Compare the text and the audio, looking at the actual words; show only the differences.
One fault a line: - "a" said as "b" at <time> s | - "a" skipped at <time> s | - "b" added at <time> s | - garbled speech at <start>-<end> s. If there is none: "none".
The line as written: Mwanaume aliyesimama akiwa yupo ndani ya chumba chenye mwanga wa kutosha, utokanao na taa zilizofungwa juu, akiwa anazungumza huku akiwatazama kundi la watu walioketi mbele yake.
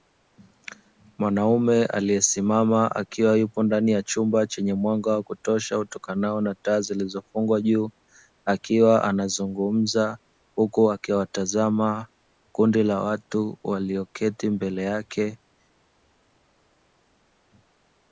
none